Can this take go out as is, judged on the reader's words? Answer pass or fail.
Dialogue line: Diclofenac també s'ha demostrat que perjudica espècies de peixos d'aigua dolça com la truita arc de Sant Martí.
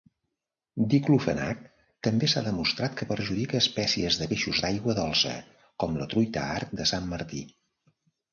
pass